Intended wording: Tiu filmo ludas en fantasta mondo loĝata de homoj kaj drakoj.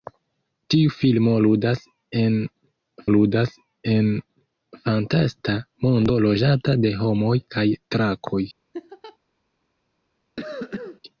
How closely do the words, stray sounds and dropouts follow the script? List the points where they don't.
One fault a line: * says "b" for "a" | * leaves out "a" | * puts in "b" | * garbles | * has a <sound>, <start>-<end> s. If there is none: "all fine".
* puts in "ludas en"
* has a laugh, 8.7-9.2 s
* has a cough, 10.4-11.0 s